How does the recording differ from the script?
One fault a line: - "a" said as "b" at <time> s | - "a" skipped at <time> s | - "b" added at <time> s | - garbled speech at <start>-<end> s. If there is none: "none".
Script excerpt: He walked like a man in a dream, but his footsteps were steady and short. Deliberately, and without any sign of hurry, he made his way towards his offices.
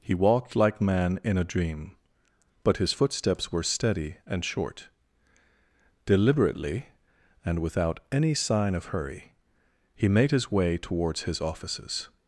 - "a" skipped at 0.8 s